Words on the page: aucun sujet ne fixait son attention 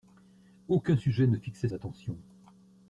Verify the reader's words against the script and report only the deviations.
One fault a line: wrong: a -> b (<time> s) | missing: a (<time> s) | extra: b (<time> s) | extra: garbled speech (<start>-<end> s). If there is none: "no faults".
missing: son (1.7 s)